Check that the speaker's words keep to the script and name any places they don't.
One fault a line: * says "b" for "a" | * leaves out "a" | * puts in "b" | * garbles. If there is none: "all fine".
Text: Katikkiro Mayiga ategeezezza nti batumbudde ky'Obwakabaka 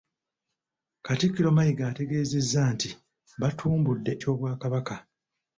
all fine